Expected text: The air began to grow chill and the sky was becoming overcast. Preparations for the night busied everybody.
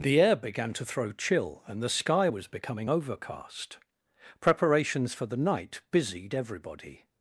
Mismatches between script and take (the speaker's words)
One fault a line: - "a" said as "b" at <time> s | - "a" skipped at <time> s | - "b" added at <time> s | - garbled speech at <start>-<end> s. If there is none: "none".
- "grow" said as "throw" at 0.8 s